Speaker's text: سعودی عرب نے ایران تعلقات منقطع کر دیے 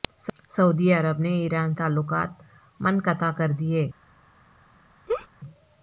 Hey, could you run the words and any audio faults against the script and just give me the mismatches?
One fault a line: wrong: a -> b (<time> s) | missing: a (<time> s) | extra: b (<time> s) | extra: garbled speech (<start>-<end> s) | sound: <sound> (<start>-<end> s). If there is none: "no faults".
sound: laugh (5.1-5.3 s)